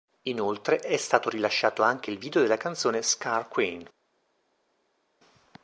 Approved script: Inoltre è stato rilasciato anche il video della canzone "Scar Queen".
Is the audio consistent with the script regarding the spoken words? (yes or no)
yes